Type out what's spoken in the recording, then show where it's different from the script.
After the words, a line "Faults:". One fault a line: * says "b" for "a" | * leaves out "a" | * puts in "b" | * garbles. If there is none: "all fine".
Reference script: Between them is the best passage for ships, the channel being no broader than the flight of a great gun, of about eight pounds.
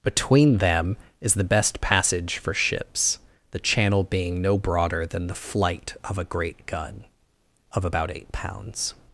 Between them is the best passage for ships, the channel being no broader than the flight of a great gun, of about eight pounds.
Faults:
all fine